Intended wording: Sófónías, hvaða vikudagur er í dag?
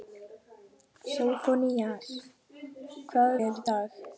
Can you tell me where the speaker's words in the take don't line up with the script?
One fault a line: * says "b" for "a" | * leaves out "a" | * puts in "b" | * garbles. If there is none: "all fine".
* leaves out "vikudagur"